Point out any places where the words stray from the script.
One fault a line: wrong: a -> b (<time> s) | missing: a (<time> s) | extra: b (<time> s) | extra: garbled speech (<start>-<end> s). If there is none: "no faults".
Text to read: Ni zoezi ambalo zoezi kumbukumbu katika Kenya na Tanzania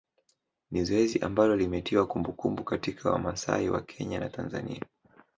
wrong: zoezi -> limetiwa (1.6 s)
extra: Wamasai wa (3.1 s)